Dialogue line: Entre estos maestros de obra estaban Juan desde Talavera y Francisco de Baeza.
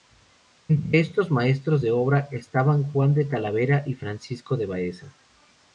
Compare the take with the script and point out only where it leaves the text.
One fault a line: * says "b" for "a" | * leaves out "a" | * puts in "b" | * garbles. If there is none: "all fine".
* says "de" for "desde"